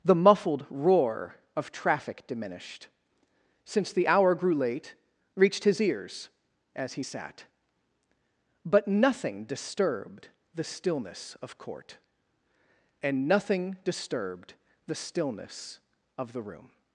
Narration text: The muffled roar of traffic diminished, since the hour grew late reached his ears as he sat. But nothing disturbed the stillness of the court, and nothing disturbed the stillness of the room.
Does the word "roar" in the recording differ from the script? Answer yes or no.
no